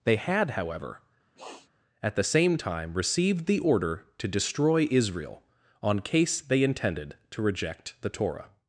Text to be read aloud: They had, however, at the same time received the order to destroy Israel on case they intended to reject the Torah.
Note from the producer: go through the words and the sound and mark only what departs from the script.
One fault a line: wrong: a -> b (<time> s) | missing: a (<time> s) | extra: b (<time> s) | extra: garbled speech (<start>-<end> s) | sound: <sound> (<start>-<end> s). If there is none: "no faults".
sound: sniff (1.4-1.7 s)